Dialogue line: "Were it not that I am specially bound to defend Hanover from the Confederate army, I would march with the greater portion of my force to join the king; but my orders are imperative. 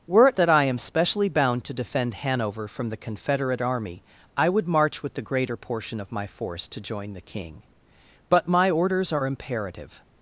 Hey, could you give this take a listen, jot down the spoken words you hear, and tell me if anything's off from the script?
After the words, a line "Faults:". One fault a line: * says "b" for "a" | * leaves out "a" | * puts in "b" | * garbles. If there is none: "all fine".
"Were it that I am specially bound to defend Hanover from the Confederate army, I would march with the greater portion of my force to join the king; but my orders are imperative.
Faults:
* leaves out "not"